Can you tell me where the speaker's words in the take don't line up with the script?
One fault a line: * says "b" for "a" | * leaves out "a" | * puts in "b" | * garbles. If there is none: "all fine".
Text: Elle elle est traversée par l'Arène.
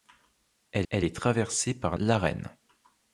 all fine